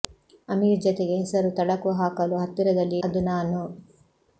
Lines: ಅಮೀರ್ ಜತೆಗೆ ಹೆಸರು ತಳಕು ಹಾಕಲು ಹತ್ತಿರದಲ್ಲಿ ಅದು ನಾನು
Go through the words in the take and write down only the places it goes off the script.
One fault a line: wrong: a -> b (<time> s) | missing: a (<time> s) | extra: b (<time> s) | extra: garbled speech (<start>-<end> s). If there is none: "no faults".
no faults